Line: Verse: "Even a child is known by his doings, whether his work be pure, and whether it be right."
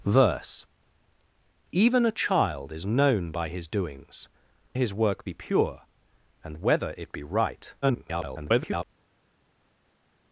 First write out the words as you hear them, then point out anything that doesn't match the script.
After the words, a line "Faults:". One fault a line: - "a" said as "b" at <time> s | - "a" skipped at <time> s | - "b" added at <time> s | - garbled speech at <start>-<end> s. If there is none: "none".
Verse: "Even a child is known by his doings, his work be pure, and whether it be right." [garbled]
Faults:
- "whether" skipped at 4.3 s
- garbled speech at 7.8-8.8 s